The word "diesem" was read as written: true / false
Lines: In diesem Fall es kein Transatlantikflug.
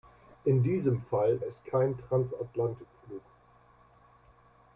true